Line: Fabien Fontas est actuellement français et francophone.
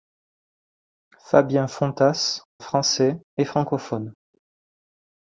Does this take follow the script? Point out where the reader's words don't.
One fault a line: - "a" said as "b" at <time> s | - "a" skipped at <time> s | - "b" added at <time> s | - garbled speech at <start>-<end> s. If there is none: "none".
- "est actuellement" skipped at 2.4 s